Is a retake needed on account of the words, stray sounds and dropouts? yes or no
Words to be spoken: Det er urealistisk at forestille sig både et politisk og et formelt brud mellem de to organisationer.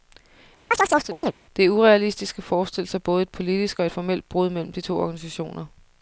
yes